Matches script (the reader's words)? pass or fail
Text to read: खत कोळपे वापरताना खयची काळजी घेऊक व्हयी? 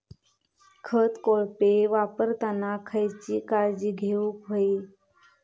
pass